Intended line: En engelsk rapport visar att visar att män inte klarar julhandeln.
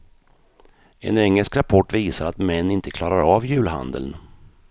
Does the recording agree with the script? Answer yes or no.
no